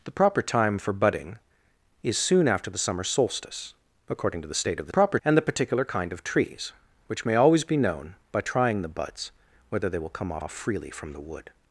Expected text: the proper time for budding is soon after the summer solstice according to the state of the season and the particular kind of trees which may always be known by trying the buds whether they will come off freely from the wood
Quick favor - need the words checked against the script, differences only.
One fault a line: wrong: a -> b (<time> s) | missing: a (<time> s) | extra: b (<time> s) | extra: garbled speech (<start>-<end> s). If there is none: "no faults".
wrong: season -> proper (4.9 s)
extra: off (10.4 s)